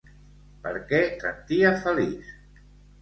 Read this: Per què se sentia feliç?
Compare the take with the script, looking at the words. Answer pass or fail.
fail